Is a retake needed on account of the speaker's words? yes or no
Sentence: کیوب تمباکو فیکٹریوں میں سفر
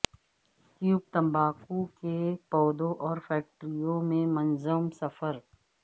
yes